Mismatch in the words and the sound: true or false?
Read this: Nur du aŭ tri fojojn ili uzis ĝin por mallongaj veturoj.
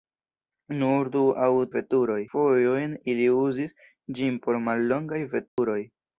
true